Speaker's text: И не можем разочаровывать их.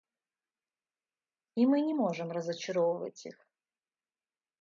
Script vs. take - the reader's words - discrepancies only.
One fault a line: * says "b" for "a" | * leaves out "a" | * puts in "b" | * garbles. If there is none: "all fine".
* puts in "мы"